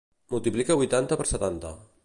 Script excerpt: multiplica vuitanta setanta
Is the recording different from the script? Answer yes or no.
yes